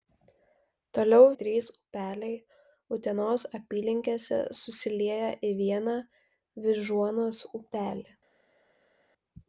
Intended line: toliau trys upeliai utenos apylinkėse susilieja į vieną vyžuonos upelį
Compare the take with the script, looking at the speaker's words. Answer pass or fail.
pass